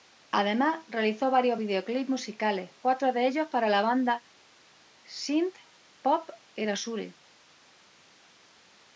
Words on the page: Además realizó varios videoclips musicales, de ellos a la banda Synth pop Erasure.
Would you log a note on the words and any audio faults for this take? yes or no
yes